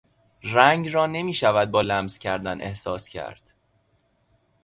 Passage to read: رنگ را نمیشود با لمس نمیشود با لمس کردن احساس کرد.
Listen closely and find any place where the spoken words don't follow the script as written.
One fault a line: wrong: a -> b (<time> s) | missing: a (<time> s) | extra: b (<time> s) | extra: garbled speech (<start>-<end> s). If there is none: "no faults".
missing: نمیشود با لمس (2.2 s)